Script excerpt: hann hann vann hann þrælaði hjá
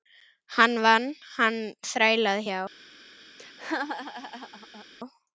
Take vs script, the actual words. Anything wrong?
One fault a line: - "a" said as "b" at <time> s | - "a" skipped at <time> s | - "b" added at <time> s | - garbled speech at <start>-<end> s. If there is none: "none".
- "hann" skipped at 0.7 s